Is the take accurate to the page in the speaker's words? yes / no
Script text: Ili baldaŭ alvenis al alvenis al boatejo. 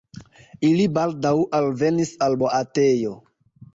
no